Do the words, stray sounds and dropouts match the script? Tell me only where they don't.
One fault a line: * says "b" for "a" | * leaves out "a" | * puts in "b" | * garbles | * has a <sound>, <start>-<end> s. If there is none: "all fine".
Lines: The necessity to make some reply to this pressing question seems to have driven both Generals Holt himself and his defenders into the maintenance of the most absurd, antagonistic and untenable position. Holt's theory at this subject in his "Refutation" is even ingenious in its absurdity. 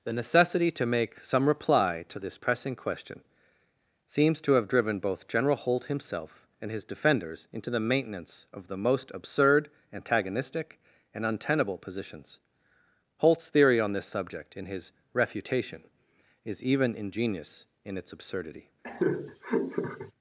* says "General" for "Generals"
* says "positions" for "position"
* says "on" for "at"
* has a laugh, 18.8-20.1 s